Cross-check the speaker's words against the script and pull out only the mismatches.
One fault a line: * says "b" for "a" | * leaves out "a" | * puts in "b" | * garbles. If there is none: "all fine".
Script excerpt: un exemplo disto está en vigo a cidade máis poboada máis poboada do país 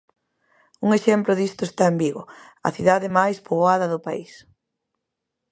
* leaves out "máis poboada"